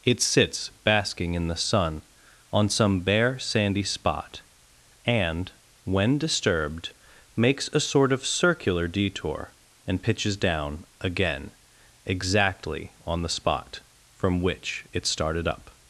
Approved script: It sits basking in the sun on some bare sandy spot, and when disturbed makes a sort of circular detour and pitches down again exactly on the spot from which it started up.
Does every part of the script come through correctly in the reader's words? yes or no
yes